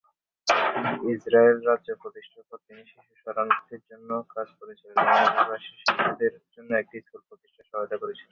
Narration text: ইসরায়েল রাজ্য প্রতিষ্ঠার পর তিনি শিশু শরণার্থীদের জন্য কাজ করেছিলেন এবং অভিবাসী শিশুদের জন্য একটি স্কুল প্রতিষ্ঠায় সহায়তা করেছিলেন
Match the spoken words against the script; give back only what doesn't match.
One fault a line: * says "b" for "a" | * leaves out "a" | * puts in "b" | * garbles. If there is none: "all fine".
all fine